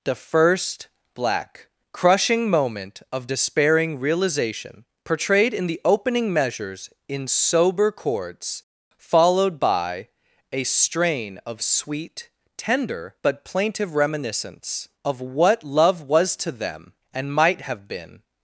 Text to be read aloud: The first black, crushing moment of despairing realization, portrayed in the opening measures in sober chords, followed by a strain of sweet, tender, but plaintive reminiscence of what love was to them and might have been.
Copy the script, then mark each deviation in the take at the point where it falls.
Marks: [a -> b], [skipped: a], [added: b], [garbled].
The first black, crushing moment of despairing realization, portrayed in the opening measures in sober chords, followed by a strain of sweet, tender, but plaintive reminiscence of what love was to them and might have been.